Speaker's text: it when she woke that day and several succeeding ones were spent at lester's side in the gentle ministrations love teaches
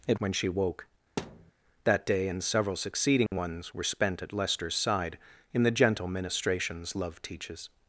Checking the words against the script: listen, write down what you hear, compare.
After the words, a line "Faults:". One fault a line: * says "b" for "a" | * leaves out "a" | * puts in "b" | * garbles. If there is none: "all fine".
it when she woke that day and several succeeding ones were spent at lester's side in the gentle ministrations love teaches
Faults:
all fine